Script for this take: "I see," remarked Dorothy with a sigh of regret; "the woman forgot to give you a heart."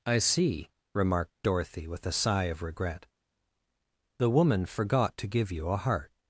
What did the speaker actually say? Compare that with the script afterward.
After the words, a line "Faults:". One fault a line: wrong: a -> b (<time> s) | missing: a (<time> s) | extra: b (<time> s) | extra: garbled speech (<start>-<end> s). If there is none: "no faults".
"I see," remarked Dorothy with a sigh of regret; "the woman forgot to give you a heart."
Faults:
no faults